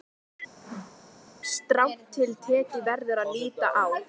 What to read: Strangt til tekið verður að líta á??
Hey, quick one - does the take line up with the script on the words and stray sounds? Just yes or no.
no